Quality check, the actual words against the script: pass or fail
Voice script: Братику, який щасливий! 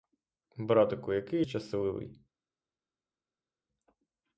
pass